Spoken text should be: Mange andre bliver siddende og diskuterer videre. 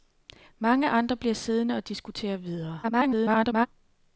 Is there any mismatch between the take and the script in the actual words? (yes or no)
yes